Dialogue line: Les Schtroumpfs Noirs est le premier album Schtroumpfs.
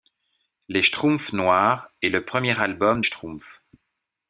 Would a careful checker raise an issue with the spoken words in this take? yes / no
no